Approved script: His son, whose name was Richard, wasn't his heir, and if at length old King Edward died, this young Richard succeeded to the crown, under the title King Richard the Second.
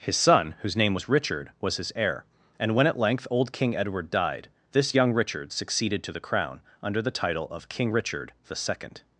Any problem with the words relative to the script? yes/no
yes